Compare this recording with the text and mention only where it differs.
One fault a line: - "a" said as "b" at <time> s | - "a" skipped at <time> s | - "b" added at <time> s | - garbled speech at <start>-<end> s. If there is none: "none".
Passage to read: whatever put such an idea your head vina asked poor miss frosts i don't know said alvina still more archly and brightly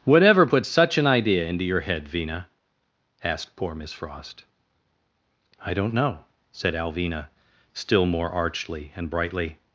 - "into" added at 1.5 s
- "frosts" said as "frost" at 3.9 s